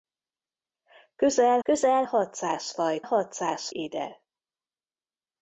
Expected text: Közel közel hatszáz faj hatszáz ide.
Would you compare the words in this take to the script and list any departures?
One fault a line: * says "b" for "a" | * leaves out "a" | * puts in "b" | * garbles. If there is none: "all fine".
all fine